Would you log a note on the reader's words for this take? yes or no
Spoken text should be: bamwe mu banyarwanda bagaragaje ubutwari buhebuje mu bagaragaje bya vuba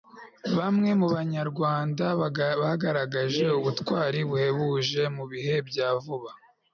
yes